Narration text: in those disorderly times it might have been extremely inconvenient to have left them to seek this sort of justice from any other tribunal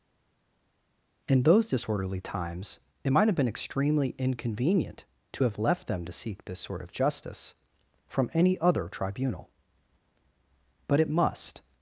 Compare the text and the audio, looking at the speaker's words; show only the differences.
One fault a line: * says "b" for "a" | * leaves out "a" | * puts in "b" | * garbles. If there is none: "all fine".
* puts in "but it must"